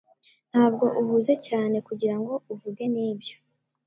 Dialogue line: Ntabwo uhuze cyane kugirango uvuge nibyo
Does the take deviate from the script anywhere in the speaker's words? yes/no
no